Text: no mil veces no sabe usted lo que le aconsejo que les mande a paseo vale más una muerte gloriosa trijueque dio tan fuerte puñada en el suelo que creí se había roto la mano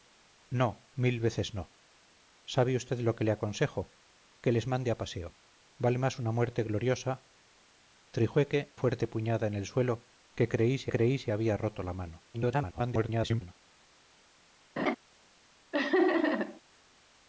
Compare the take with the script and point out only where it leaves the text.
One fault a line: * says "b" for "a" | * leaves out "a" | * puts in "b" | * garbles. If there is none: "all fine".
* leaves out "dio tan"
* puts in "creí se"
* garbles